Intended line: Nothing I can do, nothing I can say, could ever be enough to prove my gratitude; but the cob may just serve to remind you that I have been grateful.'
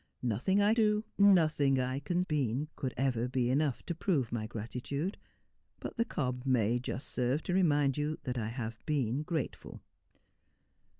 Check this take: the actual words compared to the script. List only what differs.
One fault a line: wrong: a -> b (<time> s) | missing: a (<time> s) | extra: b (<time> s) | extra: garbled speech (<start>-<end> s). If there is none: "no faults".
missing: can (0.7 s)
wrong: say -> been (2.3 s)